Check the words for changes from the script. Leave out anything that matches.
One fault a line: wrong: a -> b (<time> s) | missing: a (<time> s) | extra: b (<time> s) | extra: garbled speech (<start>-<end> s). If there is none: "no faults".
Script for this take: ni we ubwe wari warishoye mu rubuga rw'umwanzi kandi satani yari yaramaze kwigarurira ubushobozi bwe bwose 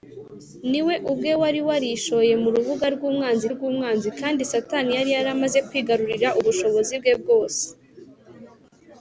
extra: rw'umwanzi (3.5 s)